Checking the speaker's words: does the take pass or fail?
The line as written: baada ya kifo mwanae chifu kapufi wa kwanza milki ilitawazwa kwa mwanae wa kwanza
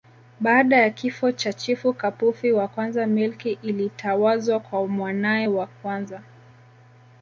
fail